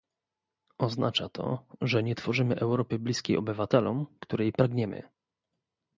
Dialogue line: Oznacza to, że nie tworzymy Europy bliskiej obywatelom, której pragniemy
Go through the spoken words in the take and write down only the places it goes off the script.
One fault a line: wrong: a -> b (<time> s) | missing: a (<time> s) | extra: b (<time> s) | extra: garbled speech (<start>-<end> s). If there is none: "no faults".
no faults